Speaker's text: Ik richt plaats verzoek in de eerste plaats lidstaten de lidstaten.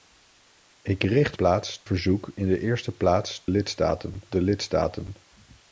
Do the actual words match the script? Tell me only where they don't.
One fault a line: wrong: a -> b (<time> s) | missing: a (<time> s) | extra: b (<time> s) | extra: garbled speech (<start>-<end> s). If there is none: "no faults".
no faults